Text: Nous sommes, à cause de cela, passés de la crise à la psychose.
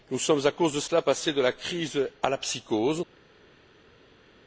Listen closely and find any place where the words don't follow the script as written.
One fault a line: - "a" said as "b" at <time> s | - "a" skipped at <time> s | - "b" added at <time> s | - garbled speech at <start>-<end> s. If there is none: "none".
none